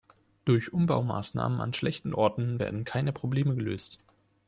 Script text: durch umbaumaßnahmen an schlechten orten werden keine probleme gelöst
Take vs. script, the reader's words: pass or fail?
pass